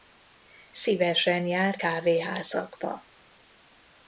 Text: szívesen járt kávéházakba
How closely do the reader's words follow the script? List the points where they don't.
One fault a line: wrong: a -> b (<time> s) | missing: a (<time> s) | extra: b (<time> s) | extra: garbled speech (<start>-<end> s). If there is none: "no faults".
no faults